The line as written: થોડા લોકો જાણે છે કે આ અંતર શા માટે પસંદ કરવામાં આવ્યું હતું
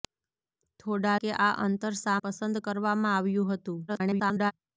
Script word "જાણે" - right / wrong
wrong